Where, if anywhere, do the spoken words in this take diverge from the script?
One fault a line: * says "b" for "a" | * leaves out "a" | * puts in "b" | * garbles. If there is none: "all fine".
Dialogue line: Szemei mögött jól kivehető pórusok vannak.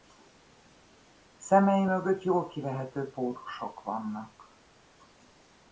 all fine